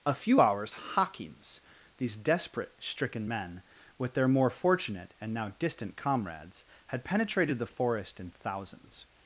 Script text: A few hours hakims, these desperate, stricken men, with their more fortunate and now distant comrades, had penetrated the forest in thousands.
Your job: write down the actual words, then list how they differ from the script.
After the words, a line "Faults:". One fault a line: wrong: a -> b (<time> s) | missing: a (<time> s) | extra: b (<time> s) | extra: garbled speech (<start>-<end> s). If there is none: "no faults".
A few hours hakims, these desperate, stricken men, with their more fortunate and now distant comrades, had penetrated the forest in thousands.
Faults:
no faults